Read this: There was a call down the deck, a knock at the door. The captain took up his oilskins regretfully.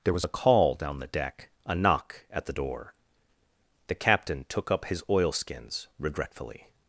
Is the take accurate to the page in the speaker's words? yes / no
yes